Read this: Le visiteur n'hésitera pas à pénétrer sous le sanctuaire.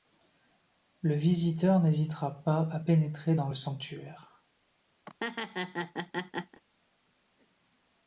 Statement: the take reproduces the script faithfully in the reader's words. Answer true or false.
false